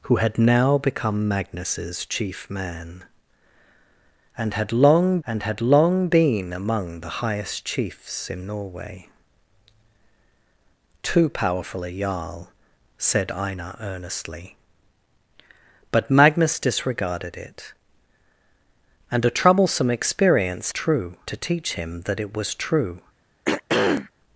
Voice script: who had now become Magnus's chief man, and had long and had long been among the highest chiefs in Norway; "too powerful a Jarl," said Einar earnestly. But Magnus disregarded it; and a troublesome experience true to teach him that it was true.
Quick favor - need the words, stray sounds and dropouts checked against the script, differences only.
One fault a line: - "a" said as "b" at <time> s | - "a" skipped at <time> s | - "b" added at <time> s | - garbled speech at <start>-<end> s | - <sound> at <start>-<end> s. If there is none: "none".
- throat clearing at 23.4-24.1 s